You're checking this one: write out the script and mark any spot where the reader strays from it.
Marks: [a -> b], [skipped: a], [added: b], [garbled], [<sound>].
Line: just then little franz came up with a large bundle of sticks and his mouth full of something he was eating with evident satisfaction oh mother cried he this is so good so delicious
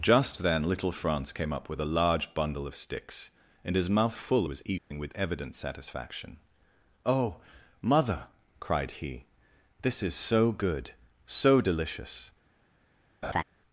just then little franz came up with a large bundle of sticks and his mouth full [skipped: of something he] was eating [dropout] with evident satisfaction oh mother cried he this is so good so delicious [laugh]